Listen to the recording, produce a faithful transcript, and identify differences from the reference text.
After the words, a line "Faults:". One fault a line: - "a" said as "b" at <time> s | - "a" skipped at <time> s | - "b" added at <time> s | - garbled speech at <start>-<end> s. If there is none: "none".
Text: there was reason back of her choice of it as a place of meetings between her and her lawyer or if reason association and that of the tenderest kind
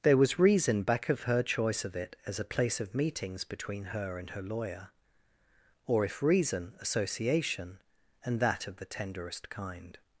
there was reason back of her choice of it as a place of meetings between her and her lawyer or if reason association and that of the tenderest kind
Faults:
none